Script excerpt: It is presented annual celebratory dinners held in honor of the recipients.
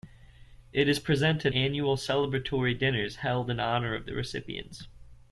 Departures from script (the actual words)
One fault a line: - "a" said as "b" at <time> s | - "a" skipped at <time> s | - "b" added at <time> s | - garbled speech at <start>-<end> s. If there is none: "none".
none